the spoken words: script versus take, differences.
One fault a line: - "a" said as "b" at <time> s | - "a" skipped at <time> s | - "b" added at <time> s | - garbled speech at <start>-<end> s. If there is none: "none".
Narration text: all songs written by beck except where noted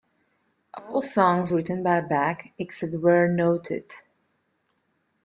none